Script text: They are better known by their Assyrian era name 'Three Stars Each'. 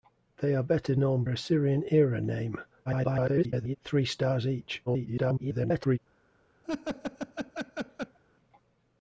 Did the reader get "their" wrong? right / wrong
wrong